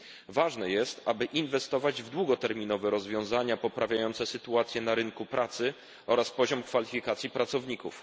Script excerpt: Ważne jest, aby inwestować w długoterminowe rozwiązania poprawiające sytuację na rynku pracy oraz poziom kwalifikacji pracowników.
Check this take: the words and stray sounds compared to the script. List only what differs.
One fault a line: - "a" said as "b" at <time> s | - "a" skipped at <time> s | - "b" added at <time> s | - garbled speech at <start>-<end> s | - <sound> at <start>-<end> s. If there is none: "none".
none